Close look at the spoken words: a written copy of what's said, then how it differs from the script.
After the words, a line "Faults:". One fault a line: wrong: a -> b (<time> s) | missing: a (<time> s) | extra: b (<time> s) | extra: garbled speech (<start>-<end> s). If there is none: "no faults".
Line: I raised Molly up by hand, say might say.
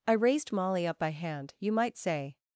I raised Molly up by hand, you might say.
Faults:
wrong: say -> you (1.6 s)